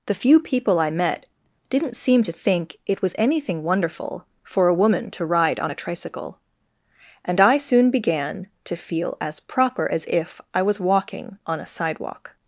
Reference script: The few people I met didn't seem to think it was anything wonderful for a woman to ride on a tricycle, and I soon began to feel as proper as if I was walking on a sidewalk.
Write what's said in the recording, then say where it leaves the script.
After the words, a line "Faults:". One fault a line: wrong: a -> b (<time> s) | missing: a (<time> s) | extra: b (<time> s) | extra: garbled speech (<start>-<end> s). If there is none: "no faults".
The few people I met didn't seem to think it was anything wonderful for a woman to ride on a tricycle, and I soon began to feel as proper as if I was walking on a sidewalk.
Faults:
no faults